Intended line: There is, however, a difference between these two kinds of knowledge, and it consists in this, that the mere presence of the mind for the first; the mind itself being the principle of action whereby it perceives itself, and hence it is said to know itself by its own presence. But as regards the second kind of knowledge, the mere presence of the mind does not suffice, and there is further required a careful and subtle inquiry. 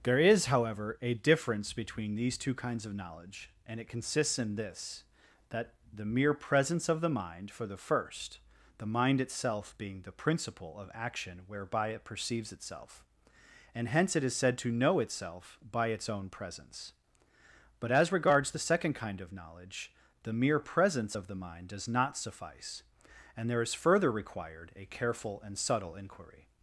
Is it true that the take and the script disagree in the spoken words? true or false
false